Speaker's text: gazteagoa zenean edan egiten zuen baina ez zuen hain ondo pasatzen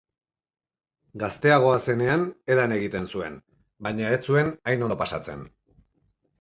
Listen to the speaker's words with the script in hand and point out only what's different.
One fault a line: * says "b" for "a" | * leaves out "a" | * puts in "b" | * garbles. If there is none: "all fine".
all fine